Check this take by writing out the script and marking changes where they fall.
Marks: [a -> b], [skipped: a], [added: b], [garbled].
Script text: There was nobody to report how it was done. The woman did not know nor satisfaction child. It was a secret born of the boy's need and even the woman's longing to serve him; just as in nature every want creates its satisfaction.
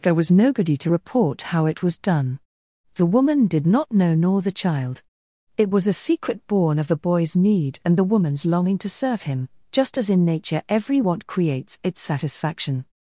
There was nobody to report how it was done. The woman did not know nor [satisfaction -> the] child. It was a secret born of the boy's need and [skipped: even] the woman's longing to serve him; just as in nature every want creates its satisfaction.